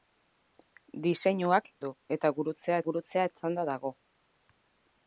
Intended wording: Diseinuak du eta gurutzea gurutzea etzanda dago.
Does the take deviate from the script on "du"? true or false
false